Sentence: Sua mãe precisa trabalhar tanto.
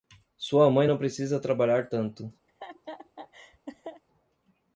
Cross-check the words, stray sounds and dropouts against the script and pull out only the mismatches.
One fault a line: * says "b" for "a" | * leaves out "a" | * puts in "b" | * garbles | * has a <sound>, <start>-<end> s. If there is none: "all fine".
* puts in "não"
* has a laugh, 2.5-4.0 s